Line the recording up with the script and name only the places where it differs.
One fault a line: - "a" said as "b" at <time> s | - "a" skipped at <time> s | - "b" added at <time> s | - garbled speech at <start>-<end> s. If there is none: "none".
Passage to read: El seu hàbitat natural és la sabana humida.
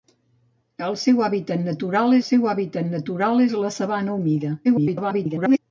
- "seu hàbitat natural" added at 2.3 s
- garbled speech at 4.6-5.6 s